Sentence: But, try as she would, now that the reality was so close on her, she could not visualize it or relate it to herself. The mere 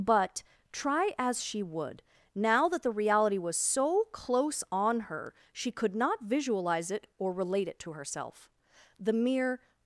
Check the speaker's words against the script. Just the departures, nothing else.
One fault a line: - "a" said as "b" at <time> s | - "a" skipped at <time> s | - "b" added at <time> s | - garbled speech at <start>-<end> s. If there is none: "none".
none